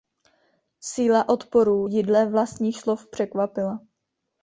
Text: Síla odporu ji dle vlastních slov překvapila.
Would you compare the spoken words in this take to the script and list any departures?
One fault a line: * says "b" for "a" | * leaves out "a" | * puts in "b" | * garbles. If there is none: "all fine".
all fine